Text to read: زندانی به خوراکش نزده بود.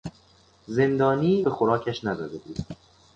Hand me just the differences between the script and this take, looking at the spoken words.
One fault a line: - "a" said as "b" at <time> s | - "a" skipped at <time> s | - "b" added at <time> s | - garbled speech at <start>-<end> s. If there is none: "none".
none